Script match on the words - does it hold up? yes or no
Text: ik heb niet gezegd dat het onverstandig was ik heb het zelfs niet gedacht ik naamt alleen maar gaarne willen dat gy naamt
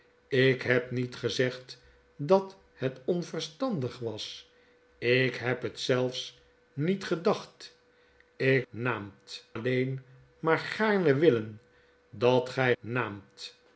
yes